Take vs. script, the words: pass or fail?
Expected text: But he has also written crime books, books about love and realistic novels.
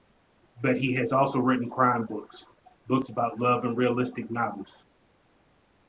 pass